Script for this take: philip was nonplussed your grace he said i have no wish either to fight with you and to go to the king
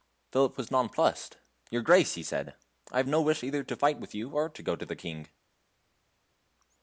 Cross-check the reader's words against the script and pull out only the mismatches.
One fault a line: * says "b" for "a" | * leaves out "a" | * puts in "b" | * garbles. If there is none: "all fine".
* says "or" for "and"